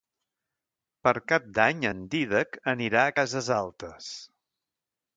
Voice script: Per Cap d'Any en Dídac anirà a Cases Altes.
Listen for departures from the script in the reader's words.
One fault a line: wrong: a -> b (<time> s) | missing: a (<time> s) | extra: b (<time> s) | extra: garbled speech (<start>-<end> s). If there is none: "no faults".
no faults